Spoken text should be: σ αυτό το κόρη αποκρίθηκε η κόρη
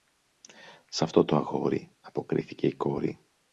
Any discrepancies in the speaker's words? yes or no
yes